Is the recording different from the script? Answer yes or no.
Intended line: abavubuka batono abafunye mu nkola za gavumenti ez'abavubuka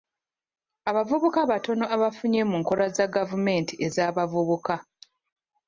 no